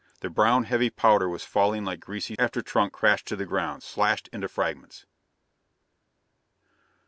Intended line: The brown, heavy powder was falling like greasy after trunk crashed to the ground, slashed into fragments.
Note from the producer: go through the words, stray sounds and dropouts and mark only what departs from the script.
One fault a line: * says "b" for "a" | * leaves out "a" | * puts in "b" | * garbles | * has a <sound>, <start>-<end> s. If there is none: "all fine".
all fine